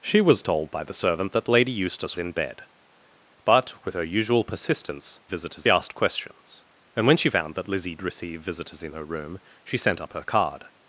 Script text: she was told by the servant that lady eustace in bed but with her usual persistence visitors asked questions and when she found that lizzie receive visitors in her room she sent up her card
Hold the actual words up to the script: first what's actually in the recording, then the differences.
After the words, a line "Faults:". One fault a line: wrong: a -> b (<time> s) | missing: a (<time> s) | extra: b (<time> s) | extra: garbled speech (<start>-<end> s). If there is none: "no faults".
she was told by the servant that lady eustace in bed but with her usual persistence visitors asked questions and when she found that lizzie receive visitors in her room she sent up her card
Faults:
no faults